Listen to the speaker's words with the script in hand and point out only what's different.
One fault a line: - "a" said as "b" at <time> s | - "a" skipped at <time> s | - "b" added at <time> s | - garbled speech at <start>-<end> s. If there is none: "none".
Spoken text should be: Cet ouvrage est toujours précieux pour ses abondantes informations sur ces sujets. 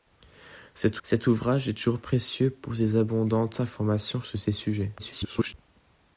- "cet" added at 1.0 s
- garbled speech at 5.0-5.5 s